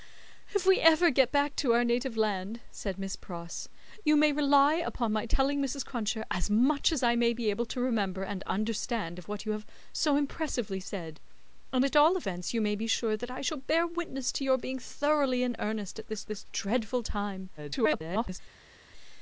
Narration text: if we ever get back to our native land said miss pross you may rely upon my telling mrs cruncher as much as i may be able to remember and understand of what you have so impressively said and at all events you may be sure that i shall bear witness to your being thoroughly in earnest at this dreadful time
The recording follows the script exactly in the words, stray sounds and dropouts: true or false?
false